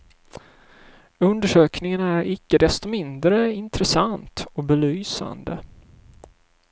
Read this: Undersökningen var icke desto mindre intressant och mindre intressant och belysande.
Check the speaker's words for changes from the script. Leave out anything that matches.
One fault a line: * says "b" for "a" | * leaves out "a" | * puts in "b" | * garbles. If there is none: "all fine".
* says "är" for "var"
* leaves out "mindre intressant och"